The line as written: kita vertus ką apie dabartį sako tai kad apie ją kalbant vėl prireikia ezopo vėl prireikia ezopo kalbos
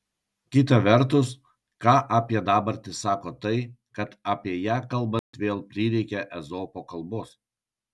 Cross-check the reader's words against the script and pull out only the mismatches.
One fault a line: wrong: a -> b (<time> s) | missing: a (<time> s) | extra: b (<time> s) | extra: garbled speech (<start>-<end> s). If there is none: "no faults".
missing: vėl prireikia ezopo (6.9 s)